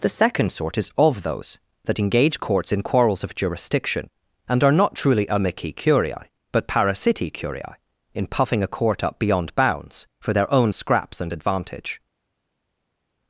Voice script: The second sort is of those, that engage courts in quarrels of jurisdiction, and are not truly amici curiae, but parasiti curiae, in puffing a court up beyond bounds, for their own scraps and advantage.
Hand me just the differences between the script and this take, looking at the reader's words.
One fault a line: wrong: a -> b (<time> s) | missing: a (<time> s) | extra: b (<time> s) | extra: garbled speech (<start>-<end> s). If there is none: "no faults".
no faults